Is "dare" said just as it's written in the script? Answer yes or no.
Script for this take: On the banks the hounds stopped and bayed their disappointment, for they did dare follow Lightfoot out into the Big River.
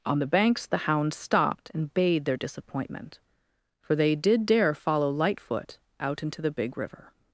yes